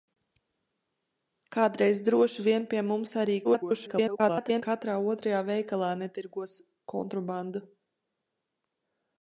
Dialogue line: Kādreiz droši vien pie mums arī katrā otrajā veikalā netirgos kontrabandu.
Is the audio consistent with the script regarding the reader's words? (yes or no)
no